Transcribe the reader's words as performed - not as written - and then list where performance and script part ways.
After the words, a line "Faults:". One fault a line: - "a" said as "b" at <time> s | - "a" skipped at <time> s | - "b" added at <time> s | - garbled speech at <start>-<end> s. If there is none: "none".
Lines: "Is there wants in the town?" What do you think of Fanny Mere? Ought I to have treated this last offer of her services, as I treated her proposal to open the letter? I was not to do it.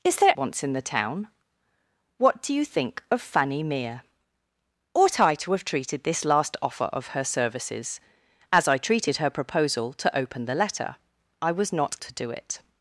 "Is there wants in the town?" What do you think of Fanny Mere? Ought I to have treated this last offer of her services, as I treated her proposal to open the letter? I was not to do it.
Faults:
none